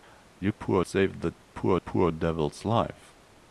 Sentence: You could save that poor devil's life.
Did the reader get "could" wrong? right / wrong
wrong